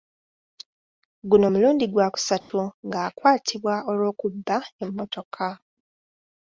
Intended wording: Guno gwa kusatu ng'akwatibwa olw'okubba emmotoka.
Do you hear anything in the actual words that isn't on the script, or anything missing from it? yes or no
yes